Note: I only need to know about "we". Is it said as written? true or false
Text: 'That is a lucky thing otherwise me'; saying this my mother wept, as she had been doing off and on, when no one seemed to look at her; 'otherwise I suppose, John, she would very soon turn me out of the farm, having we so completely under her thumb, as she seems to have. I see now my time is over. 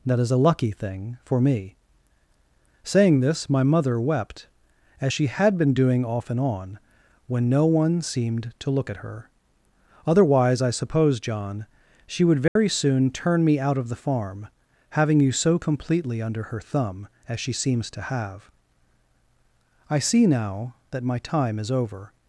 false